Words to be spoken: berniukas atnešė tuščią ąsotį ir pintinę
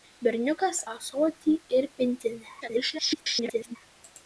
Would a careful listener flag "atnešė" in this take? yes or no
yes